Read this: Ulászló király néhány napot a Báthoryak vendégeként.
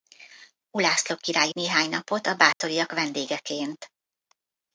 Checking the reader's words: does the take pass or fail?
pass